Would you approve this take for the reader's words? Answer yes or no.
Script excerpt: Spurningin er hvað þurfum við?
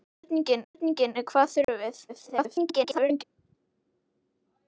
no